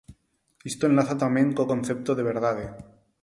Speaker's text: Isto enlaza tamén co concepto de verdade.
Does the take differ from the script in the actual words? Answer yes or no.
no